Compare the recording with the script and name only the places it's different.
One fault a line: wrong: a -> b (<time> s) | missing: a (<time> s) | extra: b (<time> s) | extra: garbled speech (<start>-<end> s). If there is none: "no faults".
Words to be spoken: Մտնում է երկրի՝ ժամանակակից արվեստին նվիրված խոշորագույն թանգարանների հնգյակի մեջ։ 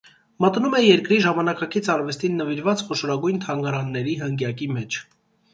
no faults